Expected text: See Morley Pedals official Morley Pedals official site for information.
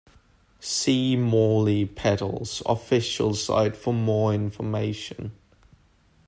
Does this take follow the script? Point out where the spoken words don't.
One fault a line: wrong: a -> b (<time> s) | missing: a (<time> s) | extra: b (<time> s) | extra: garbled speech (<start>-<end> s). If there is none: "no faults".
missing: Morley Pedals official (3.3 s)
extra: more (3.9 s)